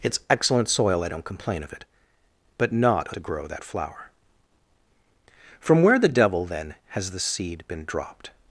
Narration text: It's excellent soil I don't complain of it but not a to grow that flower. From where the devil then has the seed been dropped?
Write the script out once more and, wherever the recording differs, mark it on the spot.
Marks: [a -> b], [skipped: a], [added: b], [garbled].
It's excellent soil I don't complain of it but not a to grow that flower. From where the devil then has the seed been dropped?